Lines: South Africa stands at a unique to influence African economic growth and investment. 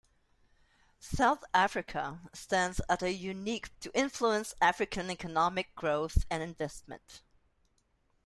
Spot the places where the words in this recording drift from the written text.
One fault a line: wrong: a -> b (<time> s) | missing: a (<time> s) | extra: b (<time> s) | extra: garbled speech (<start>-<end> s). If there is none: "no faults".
no faults